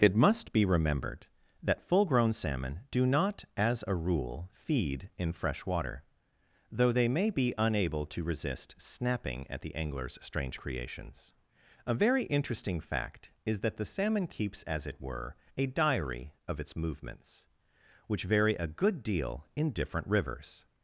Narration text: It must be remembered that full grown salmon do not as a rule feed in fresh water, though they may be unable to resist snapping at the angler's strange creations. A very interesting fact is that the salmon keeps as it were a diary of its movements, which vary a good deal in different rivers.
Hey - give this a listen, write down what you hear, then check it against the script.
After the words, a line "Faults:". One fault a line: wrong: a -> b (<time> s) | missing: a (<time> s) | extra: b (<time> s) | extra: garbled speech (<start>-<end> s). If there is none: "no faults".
It must be remembered that full grown salmon do not as a rule feed in fresh water, though they may be unable to resist snapping at the angler's strange creations. A very interesting fact is that the salmon keeps as it were a diary of its movements, which vary a good deal in different rivers.
Faults:
no faults